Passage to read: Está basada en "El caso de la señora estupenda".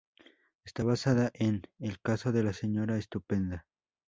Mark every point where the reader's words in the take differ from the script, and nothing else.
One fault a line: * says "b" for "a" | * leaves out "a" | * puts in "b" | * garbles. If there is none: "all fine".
all fine